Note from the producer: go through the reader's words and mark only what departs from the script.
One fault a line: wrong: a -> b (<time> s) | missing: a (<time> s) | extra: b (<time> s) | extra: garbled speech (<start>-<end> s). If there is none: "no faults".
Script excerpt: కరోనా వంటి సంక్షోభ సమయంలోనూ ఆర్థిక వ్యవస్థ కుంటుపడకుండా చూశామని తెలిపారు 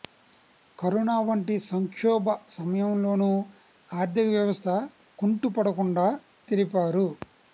missing: చూశామని (6.1 s)